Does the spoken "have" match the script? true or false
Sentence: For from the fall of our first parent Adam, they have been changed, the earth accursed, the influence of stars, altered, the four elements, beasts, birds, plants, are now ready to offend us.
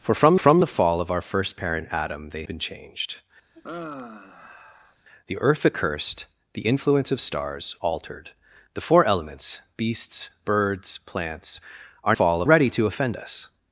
false